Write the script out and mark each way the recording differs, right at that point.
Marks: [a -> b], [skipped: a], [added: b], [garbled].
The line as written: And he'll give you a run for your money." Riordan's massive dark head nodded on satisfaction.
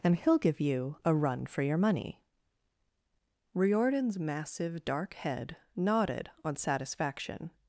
And he'll give you a run for your money." Riordan's massive dark head nodded on satisfaction.